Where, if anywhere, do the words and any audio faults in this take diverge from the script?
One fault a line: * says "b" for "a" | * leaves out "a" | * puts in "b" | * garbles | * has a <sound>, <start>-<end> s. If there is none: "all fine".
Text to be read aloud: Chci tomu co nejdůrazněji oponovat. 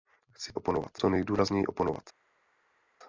* says "oponovat" for "tomu"